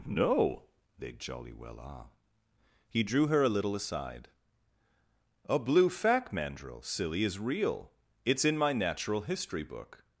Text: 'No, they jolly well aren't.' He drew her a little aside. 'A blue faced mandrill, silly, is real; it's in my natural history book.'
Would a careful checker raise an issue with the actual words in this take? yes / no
yes